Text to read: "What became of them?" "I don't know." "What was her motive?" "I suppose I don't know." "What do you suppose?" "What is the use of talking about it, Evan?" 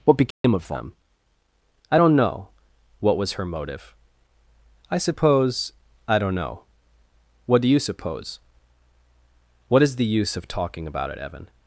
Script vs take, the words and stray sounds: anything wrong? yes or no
yes